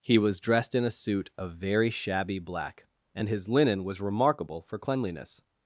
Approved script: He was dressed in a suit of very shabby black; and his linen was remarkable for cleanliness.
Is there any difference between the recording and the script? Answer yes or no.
no